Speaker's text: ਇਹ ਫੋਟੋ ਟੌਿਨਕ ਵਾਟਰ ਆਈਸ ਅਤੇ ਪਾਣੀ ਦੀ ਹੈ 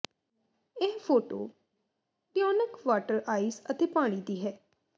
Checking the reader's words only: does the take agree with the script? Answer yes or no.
yes